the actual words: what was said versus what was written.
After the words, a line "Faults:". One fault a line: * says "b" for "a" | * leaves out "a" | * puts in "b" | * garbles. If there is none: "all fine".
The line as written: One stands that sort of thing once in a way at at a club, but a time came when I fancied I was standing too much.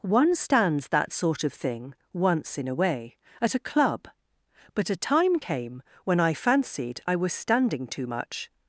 One stands that sort of thing once in a way at a club, but a time came when I fancied I was standing too much.
Faults:
* leaves out "at"